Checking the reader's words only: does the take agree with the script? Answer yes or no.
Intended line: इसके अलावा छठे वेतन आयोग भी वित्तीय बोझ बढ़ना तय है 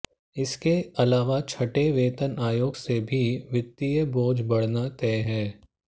no